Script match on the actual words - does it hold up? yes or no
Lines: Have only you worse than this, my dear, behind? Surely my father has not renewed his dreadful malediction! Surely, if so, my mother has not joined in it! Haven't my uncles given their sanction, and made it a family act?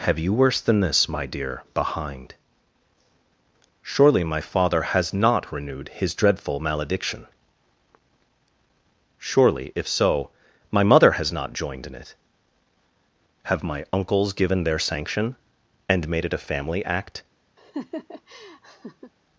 no